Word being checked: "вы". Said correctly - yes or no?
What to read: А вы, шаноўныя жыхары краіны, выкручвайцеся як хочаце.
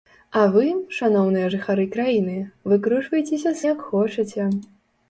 yes